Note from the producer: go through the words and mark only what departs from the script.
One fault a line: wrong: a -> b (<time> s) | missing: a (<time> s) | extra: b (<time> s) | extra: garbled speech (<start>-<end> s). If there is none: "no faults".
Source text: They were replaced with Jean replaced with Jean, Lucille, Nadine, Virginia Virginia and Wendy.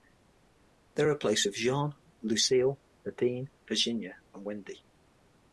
missing: replaced with Jean (1.9 s)
missing: Virginia (4.2 s)